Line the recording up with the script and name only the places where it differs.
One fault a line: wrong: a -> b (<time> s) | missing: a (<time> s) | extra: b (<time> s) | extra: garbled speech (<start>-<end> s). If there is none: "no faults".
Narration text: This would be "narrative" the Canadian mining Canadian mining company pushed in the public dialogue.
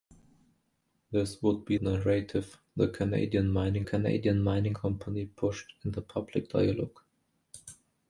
no faults